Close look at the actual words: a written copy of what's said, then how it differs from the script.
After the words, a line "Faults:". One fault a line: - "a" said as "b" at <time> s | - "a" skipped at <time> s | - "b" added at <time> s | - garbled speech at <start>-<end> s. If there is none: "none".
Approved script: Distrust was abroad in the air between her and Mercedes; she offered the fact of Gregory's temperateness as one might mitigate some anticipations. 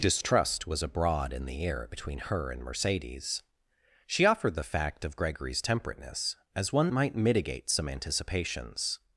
Distrust was abroad in the air between her and Mercedes; she offered the fact of Gregory's temperateness as one might mitigate some anticipations.
Faults:
none